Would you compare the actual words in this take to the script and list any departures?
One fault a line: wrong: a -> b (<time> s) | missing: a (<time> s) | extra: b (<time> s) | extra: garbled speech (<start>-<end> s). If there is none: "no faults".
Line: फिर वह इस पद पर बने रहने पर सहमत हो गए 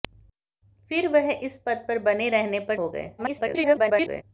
missing: सहमत (2.8 s)
extra: garbled speech (3.2-4.2 s)